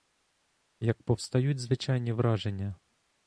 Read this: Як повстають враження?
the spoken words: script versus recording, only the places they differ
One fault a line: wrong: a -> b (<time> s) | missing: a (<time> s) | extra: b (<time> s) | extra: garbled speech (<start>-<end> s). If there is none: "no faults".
extra: звичайні (1.6 s)